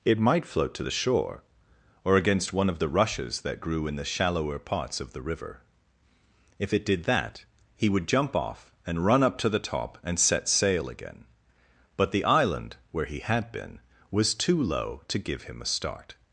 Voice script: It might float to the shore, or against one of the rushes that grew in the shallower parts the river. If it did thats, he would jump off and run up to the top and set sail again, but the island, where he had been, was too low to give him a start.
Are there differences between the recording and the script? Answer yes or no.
yes